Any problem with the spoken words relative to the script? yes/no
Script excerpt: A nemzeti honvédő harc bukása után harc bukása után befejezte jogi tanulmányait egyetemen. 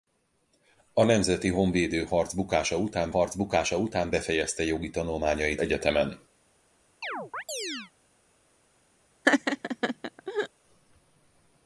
no